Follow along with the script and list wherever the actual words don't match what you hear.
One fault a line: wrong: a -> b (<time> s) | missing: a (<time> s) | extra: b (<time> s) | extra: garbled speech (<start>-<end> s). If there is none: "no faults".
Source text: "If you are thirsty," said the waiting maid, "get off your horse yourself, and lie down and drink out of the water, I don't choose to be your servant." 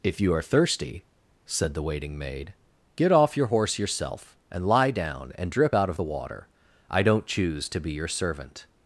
wrong: drink -> drip (5.5 s)